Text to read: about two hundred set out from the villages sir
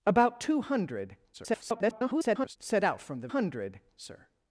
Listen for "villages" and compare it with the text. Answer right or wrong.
wrong